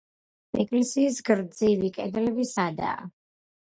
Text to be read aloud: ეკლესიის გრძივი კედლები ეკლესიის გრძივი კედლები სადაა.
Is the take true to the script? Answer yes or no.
no